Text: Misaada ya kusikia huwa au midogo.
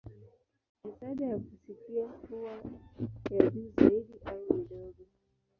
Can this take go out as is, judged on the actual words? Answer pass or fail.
fail